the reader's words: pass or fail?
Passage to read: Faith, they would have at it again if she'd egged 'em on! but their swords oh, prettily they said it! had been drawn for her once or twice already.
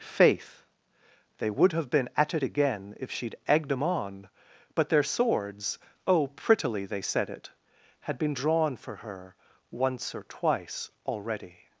fail